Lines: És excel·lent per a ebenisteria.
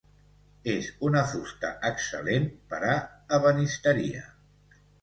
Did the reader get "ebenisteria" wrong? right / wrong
right